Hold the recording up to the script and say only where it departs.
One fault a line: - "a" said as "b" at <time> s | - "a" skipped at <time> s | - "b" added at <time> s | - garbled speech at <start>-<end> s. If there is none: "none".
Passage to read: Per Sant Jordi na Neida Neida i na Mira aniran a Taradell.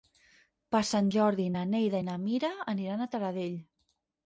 - "Neida" skipped at 2.0 s